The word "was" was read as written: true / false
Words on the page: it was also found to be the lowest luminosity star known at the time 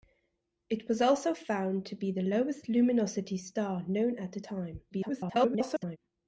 true